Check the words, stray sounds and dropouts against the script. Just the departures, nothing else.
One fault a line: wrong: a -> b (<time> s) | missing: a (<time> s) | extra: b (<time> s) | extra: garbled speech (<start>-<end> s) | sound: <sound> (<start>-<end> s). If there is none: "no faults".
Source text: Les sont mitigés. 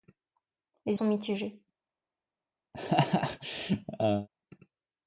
sound: laugh (2.7-4.3 s)